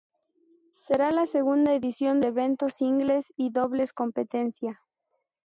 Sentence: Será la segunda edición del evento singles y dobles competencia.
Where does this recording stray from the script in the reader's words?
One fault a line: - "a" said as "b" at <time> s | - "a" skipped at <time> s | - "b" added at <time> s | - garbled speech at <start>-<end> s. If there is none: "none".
- "del" skipped at 2.2 s